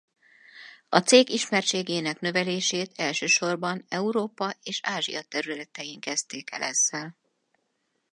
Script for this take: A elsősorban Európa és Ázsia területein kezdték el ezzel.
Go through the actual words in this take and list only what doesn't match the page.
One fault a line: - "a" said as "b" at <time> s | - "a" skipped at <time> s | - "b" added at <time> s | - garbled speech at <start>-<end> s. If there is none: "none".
- "cég ismertségének növelését" added at 1.0 s